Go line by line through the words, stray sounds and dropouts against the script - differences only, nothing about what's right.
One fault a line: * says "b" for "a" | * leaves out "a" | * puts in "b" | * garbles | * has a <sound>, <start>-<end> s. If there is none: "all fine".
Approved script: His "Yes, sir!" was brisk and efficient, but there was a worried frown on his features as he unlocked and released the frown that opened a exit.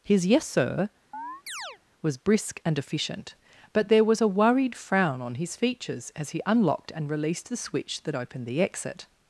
* has a chirp, 1.1-1.8 s
* says "switch" for "frown"
* says "the" for "a"